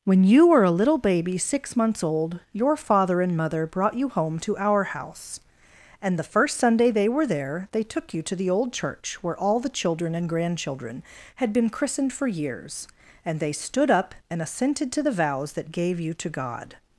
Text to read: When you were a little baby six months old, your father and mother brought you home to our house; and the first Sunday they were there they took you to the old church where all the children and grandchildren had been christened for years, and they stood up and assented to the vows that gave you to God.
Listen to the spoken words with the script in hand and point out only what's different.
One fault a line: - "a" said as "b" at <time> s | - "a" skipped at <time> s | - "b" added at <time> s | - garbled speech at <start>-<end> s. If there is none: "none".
none